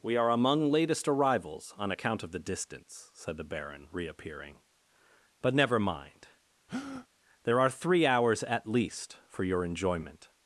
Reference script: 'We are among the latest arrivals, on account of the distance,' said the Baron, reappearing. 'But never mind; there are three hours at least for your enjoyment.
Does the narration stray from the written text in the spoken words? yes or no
yes